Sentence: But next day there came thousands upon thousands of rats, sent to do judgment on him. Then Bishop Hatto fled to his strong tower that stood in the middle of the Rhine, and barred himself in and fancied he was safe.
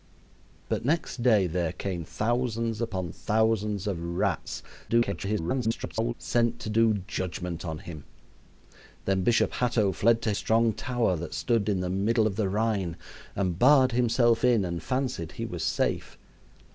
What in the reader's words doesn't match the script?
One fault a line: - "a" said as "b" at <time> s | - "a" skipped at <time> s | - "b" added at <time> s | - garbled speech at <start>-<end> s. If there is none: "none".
- garbled speech at 4.9-6.1 s
- "his" skipped at 10.3 s